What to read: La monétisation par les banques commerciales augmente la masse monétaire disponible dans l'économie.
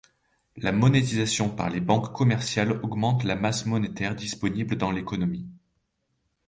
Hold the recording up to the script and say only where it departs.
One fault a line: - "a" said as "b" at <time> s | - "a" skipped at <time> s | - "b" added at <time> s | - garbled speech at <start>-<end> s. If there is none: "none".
none